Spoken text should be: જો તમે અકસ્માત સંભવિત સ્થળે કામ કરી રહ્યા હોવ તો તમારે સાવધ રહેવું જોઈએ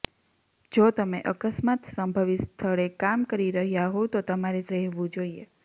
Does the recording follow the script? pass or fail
fail